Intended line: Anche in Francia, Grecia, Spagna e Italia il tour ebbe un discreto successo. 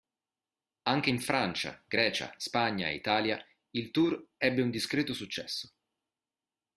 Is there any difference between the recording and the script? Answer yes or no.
no